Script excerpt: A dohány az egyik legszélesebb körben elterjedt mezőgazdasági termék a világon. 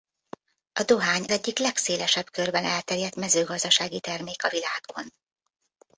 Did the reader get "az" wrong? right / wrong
wrong